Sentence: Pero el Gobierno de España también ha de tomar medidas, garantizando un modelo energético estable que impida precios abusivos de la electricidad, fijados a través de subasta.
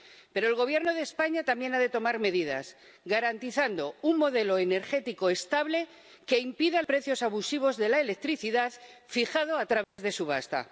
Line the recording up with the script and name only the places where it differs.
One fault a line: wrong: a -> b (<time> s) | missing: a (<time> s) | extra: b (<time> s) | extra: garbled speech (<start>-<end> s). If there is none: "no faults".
no faults